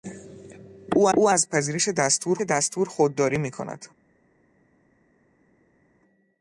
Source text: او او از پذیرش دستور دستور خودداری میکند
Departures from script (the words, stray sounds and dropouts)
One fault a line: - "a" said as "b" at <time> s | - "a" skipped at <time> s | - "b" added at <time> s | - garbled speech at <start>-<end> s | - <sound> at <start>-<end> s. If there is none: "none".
none